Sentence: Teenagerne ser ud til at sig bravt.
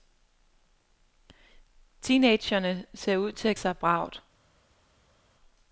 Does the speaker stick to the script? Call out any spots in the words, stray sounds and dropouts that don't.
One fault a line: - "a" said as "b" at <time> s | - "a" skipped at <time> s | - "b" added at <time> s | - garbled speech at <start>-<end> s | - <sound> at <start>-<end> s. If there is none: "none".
none